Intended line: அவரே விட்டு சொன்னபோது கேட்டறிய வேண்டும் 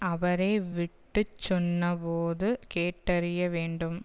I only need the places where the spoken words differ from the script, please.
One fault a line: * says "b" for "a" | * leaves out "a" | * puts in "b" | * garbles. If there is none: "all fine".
all fine